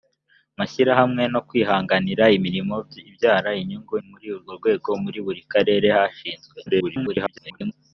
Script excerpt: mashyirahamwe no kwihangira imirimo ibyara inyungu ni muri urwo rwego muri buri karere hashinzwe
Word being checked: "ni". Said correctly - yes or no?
no